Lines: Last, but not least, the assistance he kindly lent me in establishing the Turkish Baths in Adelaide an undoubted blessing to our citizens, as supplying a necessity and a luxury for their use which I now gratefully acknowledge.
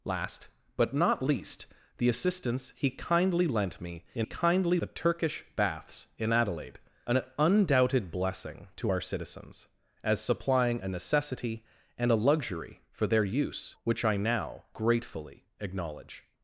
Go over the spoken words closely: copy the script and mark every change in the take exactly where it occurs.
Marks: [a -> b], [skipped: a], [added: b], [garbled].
Last, but not least, the assistance he kindly lent me in [establishing -> kindly] the Turkish Baths in Adelaide an undoubted blessing to our citizens, as supplying a necessity and a luxury for their use which I now gratefully acknowledge.